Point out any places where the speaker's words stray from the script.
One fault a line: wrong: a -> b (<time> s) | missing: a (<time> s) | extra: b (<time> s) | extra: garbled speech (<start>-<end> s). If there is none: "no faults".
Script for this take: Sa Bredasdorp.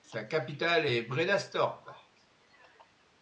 extra: capitale est (0.2 s)